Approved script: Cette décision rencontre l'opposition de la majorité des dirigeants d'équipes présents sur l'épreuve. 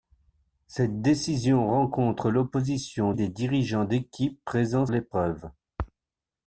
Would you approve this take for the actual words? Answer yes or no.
no